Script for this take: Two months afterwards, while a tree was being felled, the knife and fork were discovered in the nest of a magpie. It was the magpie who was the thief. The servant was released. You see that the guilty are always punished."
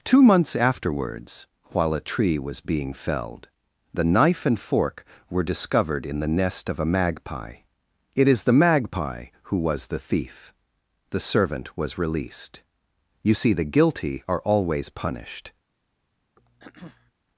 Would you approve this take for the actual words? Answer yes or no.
no